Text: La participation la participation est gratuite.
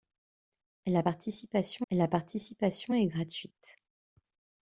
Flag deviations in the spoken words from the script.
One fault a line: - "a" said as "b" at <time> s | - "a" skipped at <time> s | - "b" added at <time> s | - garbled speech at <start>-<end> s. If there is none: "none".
none